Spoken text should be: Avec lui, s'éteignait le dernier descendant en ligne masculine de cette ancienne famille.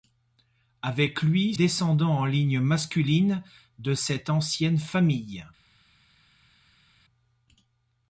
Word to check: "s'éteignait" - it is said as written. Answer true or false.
false